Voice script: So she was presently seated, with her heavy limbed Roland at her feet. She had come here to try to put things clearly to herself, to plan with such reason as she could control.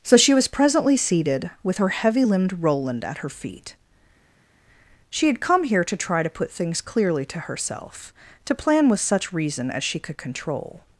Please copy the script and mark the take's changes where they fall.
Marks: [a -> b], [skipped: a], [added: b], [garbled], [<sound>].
So she was presently seated, with her heavy limbed Roland at her feet. She had come here to try to put things clearly to herself, to plan with such reason as she could control.